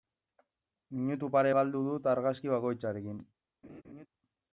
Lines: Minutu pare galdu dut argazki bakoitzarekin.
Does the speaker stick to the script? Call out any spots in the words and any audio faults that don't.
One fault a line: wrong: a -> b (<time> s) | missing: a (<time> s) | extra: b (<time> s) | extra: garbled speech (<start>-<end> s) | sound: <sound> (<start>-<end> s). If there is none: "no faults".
sound: laugh (3.6-4.1 s)